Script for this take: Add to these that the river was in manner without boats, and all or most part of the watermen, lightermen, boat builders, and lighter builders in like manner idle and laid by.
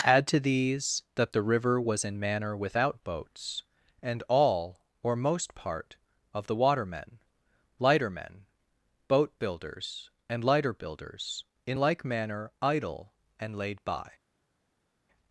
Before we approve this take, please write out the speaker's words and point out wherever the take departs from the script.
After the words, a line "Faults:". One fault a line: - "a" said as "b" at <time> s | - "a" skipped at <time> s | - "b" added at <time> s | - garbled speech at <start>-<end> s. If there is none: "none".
Add to these that the river was in manner without boats, and all or most part of the watermen, lightermen, boat builders, and lighter builders in like manner idle and laid by.
Faults:
none